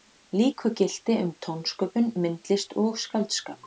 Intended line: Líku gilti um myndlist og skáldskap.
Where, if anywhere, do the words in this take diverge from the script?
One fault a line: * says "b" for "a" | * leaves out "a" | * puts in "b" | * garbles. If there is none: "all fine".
* puts in "tónsköpun"